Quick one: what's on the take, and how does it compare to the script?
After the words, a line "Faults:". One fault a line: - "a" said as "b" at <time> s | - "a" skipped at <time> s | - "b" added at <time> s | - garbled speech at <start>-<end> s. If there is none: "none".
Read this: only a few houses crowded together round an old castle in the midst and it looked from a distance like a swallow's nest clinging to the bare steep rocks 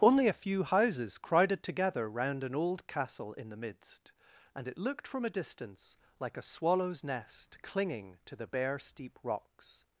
only a few houses crowded together round an old castle in the midst and it looked from a distance like a swallow's nest clinging to the bare steep rocks
Faults:
none